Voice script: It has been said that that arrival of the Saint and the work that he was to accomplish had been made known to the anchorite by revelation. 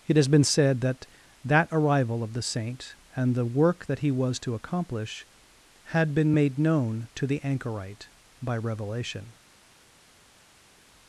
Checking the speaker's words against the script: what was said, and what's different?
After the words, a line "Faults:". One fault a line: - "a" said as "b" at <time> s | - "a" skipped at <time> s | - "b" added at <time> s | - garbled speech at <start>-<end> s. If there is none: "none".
It has been said that that arrival of the Saint and the work that he was to accomplish had been made known to the anchorite by revelation.
Faults:
none